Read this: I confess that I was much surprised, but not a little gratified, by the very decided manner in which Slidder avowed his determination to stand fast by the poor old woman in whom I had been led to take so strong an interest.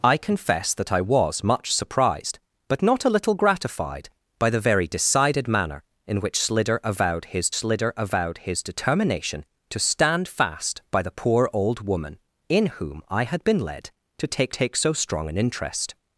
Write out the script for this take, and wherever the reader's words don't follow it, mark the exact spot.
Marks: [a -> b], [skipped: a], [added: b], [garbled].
I confess that I was much surprised, but not a little gratified, by the very decided manner in which Slidder avowed his [added: Slidder avowed his] determination to stand fast by the poor old woman in whom I had been led to take [added: take] so strong an interest.